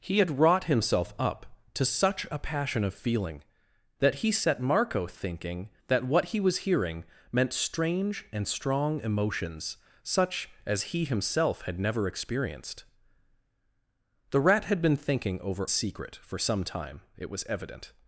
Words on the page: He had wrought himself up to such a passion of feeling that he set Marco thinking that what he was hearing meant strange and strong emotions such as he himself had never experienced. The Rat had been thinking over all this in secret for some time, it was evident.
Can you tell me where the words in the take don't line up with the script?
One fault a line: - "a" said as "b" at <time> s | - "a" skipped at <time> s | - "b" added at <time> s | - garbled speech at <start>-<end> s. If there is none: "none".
- "all this in" skipped at 15.7 s